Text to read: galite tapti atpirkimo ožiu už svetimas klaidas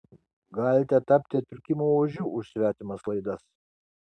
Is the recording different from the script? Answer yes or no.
no